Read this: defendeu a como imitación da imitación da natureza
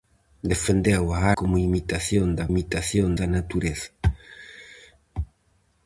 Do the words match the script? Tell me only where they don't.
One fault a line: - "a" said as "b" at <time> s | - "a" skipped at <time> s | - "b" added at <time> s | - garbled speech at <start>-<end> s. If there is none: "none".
none